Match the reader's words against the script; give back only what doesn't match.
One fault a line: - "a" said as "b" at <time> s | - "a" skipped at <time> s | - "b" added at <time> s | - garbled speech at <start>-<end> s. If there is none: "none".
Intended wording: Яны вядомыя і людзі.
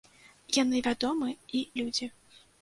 none